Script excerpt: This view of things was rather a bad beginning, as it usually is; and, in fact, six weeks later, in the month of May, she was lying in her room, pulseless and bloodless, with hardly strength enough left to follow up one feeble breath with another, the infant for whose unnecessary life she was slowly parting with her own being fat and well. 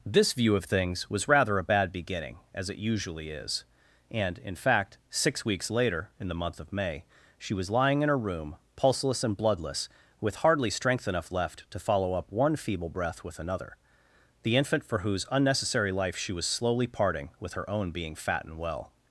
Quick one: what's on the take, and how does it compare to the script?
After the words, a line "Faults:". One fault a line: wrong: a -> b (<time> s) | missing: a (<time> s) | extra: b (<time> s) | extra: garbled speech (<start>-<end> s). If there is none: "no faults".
This view of things was rather a bad beginning, as it usually is; and, in fact, six weeks later, in the month of May, she was lying in her room, pulseless and bloodless, with hardly strength enough left to follow up one feeble breath with another, the infant for whose unnecessary life she was slowly parting with her own being fat and well.
Faults:
no faults